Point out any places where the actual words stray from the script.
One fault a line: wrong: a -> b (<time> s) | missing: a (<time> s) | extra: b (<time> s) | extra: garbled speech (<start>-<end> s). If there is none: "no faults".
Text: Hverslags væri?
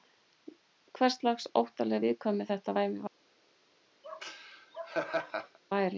extra: óttaleg viðkvæmni þetta (1.6 s)